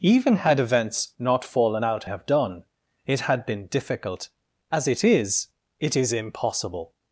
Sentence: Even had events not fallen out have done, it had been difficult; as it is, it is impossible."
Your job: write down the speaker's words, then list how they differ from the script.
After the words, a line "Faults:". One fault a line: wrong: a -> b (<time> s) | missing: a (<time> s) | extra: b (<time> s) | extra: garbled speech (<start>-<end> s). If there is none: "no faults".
Even had events not fallen out have done, it had been difficult; as it is, it is impossible."
Faults:
no faults